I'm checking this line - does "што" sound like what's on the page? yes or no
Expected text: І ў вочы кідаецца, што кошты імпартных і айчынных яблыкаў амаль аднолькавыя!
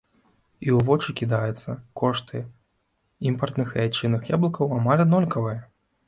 no